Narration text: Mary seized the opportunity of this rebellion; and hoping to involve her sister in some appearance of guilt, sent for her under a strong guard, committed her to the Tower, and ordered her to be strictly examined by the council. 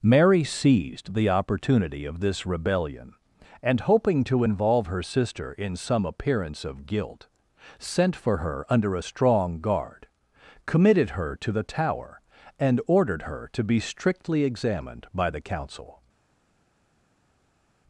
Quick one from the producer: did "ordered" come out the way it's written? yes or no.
yes